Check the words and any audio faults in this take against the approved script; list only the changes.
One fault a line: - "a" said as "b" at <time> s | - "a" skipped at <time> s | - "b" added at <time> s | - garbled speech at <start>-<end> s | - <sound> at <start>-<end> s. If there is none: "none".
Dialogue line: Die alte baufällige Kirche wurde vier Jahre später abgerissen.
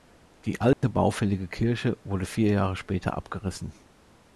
- dropout at 0.7-0.8 s